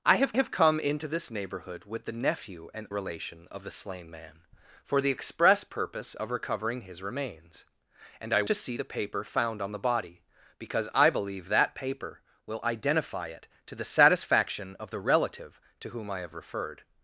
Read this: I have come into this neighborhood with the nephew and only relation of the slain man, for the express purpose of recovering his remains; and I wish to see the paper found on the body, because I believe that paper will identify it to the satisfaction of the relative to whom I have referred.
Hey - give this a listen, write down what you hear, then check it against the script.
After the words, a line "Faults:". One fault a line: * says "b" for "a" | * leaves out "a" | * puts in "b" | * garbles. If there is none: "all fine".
I have have come into this neighborhood with the nephew and relation of the slain man, for the express purpose of recovering his remains; and I to see the paper found on the body, because I believe that paper will identify it to the satisfaction of the relative to whom I have referred.
Faults:
* puts in "have"
* leaves out "only"
* leaves out "wish"